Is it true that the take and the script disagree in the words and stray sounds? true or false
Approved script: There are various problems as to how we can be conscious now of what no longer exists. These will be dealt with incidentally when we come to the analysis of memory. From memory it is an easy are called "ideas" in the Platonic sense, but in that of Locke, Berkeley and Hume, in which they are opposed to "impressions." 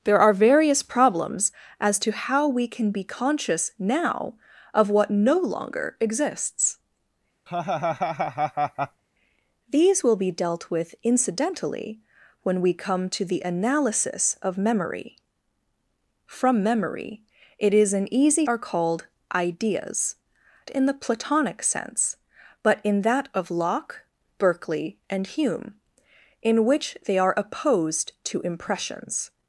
true